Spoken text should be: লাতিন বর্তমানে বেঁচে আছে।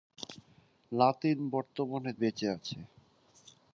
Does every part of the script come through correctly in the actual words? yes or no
yes